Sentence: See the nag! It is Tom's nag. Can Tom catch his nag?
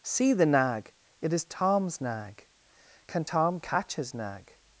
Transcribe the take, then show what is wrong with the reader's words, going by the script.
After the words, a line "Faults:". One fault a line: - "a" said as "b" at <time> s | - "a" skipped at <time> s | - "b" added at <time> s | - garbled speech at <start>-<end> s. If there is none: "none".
See the nag! It is Tom's nag. Can Tom catch his nag?
Faults:
none